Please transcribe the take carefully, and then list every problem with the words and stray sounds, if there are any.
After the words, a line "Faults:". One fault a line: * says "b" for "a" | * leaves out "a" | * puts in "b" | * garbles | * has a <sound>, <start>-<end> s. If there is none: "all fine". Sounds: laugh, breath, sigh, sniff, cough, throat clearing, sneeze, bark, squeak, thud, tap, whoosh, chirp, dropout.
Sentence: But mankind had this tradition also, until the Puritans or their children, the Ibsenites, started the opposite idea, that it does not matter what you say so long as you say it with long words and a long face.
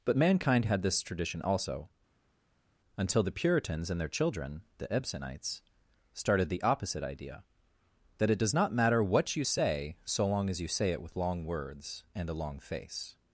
But mankind had this tradition also, until the Puritans and their children, the Ibsenites, started the opposite idea, that it does not matter what you say so long as you say it with long words and a long face.
Faults:
* says "and" for "or"